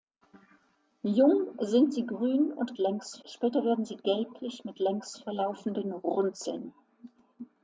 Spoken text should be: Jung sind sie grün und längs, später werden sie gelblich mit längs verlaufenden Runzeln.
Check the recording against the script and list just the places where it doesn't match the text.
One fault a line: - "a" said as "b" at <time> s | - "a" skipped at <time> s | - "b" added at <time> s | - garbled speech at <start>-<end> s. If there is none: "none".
none